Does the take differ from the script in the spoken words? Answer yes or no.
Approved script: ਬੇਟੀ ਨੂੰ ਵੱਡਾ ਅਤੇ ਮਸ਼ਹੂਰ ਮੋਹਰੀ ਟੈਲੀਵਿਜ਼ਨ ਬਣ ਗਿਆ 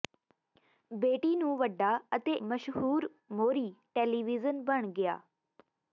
no